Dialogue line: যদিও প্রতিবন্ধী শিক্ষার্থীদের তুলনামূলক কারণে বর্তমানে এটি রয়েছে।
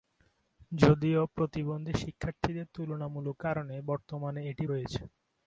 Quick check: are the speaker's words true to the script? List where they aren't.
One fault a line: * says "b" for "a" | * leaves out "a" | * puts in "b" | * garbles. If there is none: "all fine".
all fine